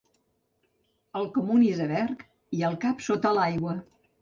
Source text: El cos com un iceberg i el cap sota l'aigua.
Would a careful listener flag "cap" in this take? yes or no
no